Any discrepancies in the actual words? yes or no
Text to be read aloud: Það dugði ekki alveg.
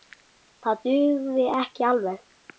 no